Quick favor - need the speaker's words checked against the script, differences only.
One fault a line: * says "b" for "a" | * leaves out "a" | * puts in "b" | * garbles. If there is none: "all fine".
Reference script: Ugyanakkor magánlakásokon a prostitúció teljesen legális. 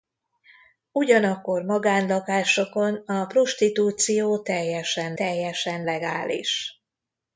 * puts in "teljesen"